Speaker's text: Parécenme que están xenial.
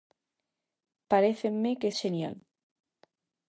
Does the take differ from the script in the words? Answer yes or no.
yes